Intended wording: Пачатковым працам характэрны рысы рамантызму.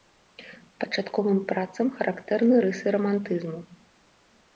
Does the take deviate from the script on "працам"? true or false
false